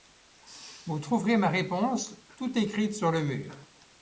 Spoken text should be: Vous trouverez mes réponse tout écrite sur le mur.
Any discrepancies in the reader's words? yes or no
yes